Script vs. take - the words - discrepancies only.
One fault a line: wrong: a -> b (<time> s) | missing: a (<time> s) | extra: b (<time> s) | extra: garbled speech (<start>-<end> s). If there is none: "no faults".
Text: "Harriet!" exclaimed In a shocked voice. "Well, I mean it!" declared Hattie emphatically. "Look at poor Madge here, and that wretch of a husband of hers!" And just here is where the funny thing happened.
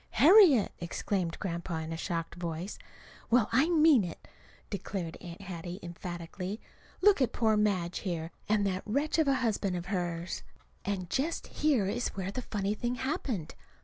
extra: Grandpa (1.4 s)
extra: Aunt (5.2 s)